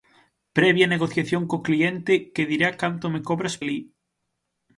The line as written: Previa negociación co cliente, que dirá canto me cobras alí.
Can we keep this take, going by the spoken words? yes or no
yes